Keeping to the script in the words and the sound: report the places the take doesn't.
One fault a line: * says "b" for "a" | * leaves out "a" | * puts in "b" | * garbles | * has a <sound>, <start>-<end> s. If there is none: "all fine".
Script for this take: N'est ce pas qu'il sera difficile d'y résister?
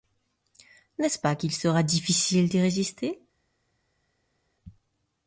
all fine